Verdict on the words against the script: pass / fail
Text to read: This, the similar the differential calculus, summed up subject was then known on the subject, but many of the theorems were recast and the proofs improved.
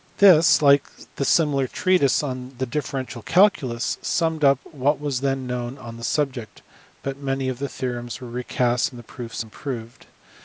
fail